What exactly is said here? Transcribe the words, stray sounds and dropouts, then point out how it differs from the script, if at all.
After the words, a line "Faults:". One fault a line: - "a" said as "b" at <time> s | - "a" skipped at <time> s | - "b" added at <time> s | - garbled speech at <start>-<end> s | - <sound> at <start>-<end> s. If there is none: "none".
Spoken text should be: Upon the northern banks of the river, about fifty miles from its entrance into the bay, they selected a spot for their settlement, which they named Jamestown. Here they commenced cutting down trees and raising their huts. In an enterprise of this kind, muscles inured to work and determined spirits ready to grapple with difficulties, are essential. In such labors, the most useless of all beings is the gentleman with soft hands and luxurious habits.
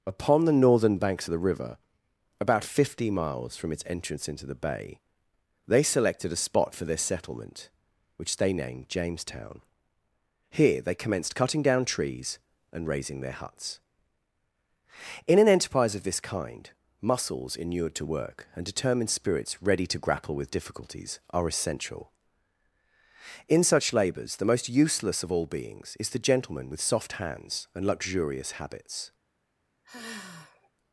Upon the northern banks of the river, about fifty miles from its entrance into the bay, they selected a spot for their settlement, which they named Jamestown. Here they commenced cutting down trees and raising their huts. In an enterprise of this kind, muscles inured to work and determined spirits ready to grapple with difficulties, are essential. In such labors, the most useless of all beings is the gentleman with soft hands and luxurious habits.
Faults:
- sigh at 29.8-30.7 s